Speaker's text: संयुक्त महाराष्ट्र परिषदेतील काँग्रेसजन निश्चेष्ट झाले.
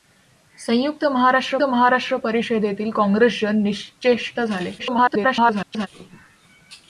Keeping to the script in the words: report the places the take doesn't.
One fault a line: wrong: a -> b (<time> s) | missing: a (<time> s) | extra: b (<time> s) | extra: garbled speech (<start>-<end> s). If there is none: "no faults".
extra: महाराष्ट्र (1.6 s)
extra: garbled speech (4.8-5.9 s)